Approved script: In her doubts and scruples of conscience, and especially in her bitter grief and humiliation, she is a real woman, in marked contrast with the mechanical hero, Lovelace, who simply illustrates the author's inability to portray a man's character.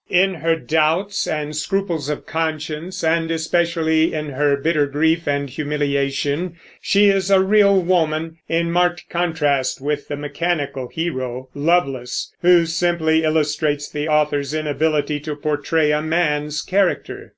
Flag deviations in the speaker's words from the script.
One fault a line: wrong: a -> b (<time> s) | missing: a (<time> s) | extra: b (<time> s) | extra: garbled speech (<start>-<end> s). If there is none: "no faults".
no faults